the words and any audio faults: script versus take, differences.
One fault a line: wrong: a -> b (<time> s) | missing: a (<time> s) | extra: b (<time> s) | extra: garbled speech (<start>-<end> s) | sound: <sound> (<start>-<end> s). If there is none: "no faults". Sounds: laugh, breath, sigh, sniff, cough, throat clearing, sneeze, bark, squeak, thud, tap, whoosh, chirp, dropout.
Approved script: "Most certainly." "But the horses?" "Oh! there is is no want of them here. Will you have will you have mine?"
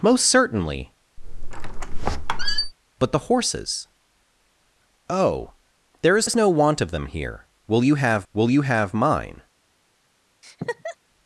sound: squeak (1.2-2.7 s)
sound: laugh (10.4-11.0 s)